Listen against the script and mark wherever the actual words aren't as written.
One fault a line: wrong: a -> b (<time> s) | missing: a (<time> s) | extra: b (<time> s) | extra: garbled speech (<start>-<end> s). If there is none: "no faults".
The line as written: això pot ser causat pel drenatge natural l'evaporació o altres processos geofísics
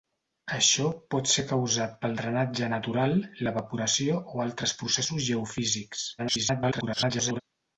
extra: garbled speech (6.2-7.4 s)